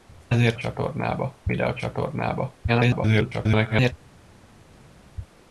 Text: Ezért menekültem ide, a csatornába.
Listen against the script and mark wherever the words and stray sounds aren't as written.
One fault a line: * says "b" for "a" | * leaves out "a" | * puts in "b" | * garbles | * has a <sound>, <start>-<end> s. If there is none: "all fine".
* says "csatornába" for "menekültem"
* garbles